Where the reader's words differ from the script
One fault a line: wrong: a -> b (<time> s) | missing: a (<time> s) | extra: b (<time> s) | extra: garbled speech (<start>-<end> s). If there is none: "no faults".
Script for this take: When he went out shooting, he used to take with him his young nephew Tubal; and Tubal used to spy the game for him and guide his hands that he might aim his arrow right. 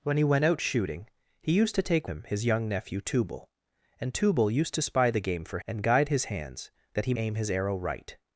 missing: with (2.1 s)
missing: him (5.6 s)
missing: might (7.1 s)